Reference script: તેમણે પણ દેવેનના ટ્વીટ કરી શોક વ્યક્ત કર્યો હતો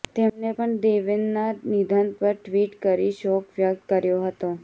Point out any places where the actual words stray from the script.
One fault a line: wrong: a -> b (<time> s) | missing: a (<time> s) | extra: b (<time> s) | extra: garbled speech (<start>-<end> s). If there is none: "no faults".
extra: નિધન પર (1.7 s)